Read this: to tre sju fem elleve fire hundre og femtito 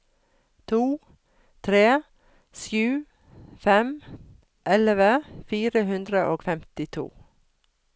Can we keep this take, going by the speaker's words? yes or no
yes